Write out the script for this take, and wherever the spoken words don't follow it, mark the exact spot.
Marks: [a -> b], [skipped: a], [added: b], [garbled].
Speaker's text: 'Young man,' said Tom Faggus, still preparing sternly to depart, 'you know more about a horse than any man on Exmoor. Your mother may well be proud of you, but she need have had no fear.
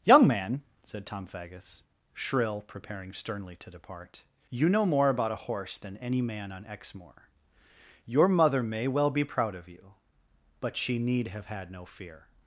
'Young man,' said Tom Faggus, [still -> shrill] preparing sternly to depart, 'you know more about a horse than any man on Exmoor. Your mother may well be proud of you, but she need have had no fear.